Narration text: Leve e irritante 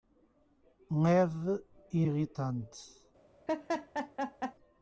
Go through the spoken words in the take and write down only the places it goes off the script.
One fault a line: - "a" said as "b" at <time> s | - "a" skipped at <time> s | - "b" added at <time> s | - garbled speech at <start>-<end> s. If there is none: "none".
none